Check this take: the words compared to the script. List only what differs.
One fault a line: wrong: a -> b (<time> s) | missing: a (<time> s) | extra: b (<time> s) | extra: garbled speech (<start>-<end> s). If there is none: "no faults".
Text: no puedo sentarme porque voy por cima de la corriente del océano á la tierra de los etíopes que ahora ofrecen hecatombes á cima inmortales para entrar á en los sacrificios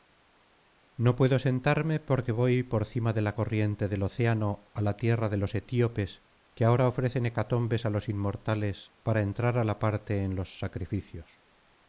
wrong: cima -> los (7.9 s)
extra: la parte (9.6 s)